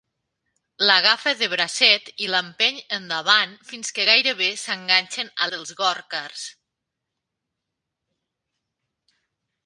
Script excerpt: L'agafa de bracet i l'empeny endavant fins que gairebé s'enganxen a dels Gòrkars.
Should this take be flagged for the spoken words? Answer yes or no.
no